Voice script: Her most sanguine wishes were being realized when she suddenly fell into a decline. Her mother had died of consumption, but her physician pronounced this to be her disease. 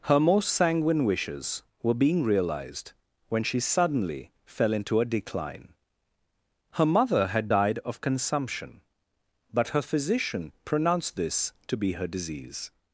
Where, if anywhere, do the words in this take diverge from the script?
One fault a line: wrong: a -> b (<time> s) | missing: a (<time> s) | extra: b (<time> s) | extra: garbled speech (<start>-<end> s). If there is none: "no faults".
no faults